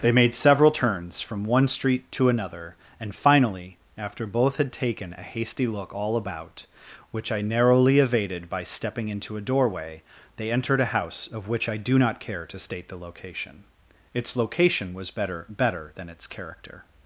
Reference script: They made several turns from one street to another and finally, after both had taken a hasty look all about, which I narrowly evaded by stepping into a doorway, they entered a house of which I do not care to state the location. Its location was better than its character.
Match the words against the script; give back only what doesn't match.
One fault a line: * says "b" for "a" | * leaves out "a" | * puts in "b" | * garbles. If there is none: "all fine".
* puts in "better"